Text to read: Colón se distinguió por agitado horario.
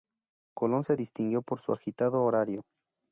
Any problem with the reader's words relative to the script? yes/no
yes